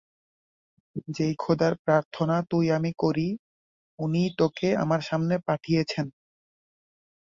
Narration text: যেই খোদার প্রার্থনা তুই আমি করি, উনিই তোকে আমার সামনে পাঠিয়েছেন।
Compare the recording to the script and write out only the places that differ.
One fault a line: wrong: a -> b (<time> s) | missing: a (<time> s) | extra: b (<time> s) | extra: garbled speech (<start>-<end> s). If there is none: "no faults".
no faults